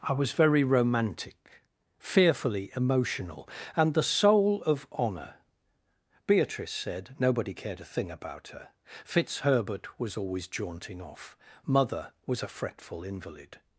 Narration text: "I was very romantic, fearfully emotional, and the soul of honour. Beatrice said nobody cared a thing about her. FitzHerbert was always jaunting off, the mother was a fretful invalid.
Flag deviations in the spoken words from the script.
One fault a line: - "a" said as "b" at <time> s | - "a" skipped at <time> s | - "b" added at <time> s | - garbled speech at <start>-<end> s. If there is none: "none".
- "the" skipped at 11.4 s